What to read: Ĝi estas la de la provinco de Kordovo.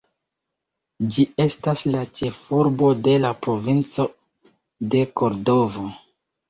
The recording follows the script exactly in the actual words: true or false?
false